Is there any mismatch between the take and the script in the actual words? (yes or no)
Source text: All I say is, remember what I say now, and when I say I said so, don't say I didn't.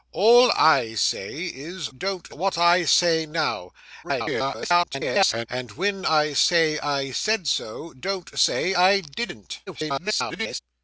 yes